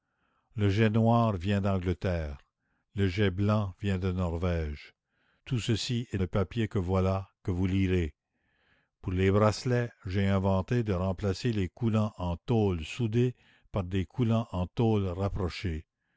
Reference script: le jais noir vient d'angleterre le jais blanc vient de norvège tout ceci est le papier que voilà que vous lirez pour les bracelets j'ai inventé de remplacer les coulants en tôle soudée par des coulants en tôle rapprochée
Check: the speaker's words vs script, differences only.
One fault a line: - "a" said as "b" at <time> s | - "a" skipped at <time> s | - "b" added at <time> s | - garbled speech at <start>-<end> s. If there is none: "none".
none